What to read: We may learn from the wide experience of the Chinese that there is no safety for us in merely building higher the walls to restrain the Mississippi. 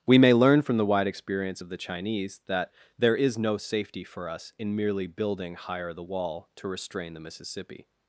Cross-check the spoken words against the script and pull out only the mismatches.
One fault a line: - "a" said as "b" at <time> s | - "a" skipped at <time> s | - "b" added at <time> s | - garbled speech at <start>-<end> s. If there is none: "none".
- "walls" said as "wall" at 6.0 s